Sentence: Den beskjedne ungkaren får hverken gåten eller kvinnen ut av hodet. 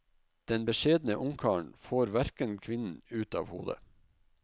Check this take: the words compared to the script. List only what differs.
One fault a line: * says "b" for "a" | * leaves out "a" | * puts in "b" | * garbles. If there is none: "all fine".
* leaves out "gåten eller"